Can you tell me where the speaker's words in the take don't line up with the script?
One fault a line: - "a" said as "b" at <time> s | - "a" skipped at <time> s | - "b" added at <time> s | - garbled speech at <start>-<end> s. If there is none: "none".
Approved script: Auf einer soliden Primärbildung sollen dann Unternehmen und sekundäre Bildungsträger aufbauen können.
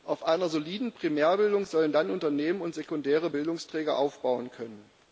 none